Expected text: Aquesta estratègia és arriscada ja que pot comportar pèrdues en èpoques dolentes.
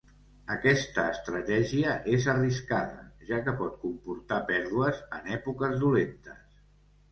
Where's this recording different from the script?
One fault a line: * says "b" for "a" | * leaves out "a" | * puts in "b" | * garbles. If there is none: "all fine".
all fine